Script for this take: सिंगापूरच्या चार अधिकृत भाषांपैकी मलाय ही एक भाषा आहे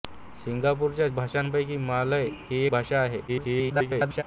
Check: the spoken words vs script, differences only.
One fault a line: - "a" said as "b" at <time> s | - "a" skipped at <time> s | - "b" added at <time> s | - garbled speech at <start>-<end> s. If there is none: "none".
- "चार अधिकृत" skipped at 1.1 s
- "एक" skipped at 2.6 s
- garbled speech at 3.3-4.2 s